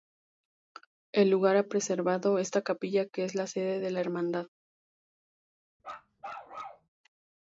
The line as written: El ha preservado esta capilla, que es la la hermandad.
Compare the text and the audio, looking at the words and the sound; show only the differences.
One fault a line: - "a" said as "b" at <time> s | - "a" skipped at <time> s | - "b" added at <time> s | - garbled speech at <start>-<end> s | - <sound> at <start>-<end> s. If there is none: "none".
- "lugar" added at 1.3 s
- "sede de" added at 3.5 s
- bark at 5.8-6.9 s